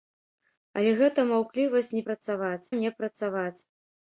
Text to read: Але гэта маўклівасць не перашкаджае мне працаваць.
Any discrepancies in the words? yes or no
yes